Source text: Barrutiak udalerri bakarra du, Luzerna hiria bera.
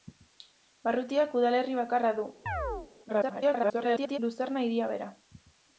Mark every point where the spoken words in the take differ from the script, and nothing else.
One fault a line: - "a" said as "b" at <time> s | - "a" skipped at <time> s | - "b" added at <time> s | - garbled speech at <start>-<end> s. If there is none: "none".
- garbled speech at 3.1-4.2 s